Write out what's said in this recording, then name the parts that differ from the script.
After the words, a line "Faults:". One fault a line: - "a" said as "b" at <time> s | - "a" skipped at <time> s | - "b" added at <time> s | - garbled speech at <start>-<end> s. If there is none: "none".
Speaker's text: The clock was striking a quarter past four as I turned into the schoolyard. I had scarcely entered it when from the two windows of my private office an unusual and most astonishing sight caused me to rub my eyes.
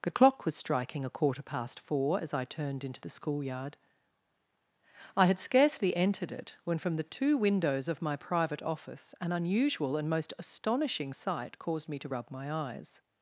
The clock was striking a quarter past four as I turned into the schoolyard. I had scarcely entered it when from the two windows of my private office an unusual and most astonishing sight caused me to rub my eyes.
Faults:
none